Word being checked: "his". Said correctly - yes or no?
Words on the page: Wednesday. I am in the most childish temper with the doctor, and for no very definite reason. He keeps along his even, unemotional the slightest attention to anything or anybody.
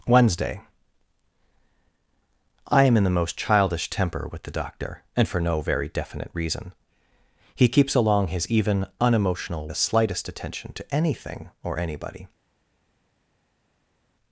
yes